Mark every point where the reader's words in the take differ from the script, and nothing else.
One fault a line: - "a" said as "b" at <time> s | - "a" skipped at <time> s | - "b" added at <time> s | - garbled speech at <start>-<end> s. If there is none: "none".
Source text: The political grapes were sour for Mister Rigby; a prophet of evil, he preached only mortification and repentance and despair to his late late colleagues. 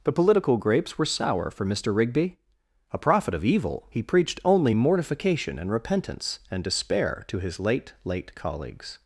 none